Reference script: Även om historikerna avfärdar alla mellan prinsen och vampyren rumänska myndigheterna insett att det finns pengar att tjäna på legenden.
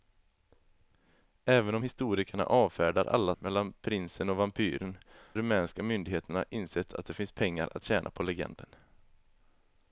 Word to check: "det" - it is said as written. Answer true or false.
true